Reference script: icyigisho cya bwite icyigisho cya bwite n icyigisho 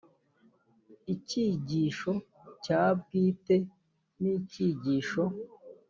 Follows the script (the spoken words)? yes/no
no